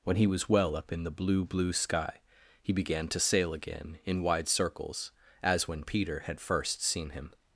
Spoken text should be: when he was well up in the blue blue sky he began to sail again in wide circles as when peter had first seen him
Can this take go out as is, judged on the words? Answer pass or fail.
pass